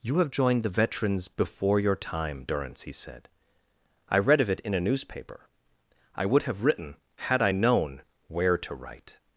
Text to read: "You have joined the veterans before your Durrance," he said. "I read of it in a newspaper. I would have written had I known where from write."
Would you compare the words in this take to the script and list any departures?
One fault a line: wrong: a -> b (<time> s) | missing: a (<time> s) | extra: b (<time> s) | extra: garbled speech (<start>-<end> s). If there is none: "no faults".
extra: time (1.9 s)
wrong: from -> to (8.6 s)